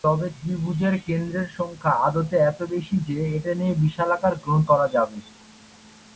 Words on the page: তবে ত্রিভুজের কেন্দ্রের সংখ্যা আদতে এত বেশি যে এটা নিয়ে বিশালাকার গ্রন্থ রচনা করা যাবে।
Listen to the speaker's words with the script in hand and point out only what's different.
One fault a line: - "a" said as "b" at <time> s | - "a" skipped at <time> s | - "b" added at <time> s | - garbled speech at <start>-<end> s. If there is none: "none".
- "রচনা" skipped at 4.7 s